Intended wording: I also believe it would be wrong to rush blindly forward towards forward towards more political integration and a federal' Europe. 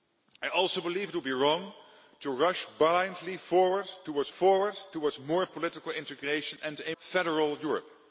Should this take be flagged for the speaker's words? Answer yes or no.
no